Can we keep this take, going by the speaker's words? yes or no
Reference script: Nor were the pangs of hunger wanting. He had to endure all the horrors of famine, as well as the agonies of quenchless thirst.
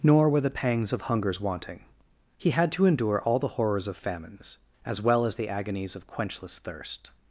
no